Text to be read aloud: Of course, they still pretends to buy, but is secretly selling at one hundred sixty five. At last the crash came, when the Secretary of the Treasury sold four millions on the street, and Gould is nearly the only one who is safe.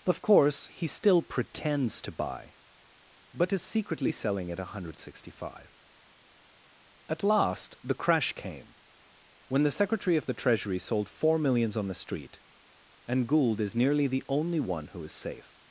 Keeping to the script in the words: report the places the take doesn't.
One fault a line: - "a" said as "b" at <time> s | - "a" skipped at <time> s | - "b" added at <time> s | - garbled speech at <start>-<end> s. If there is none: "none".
- "they" said as "he" at 0.7 s